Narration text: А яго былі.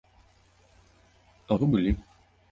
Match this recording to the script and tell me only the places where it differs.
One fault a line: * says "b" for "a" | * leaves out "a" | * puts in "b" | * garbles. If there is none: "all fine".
all fine